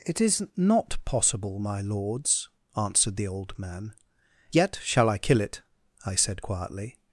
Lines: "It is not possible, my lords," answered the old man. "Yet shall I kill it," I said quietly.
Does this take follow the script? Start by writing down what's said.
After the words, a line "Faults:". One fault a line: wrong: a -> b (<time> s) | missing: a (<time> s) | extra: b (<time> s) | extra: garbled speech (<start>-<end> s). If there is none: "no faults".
"It is not possible, my lords," answered the old man. "Yet shall I kill it," I said quietly.
Faults:
no faults